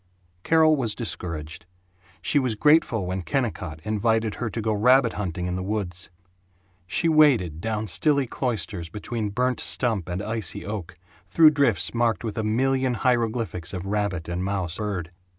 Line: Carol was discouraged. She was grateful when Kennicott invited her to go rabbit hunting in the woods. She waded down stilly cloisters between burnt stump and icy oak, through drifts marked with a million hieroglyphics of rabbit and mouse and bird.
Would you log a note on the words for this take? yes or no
yes